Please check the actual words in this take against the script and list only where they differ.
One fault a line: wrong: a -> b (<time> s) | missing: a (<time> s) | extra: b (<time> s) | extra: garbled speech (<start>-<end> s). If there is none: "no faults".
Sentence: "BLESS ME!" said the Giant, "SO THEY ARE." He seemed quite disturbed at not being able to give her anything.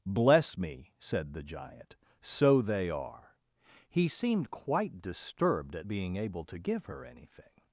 missing: not (5.9 s)